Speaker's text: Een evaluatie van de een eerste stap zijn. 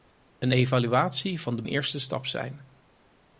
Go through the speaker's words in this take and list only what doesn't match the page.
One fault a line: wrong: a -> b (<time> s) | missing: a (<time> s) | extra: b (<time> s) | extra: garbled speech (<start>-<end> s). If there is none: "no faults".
no faults